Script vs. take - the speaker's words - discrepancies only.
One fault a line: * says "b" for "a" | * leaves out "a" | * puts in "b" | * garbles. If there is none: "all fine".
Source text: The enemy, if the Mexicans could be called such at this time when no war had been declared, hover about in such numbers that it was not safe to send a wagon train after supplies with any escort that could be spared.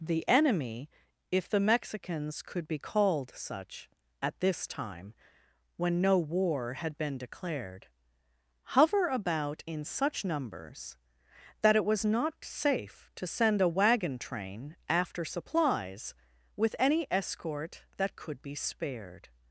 all fine